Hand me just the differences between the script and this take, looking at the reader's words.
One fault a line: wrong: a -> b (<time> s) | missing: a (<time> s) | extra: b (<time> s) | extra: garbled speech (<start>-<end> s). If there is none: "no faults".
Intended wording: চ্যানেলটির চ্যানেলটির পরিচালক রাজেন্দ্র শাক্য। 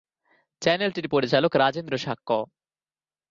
missing: চ্যানেলটির (1.1 s)